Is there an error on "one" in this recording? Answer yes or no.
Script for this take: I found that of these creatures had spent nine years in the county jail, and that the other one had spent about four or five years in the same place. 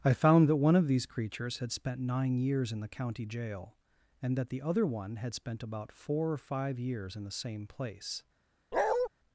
no